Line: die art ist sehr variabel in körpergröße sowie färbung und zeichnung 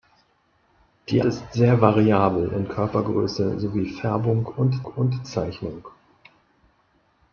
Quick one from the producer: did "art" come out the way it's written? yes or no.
no